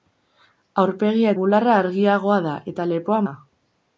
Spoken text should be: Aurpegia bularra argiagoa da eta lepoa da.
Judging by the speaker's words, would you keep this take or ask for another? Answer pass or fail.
pass